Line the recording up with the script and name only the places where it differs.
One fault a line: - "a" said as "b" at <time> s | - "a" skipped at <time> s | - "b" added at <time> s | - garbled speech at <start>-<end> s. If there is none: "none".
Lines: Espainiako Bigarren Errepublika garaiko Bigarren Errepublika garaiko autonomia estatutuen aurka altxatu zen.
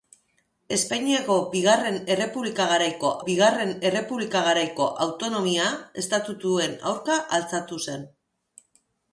none